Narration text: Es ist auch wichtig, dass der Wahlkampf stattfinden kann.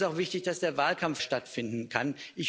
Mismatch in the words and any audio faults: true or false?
false